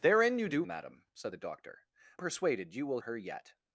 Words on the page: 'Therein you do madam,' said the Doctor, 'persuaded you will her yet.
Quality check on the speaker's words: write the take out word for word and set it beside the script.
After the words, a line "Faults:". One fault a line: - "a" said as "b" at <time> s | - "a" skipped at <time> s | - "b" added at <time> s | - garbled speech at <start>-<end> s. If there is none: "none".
'Therein you do madam,' said the Doctor, 'persuaded you will her yet.
Faults:
none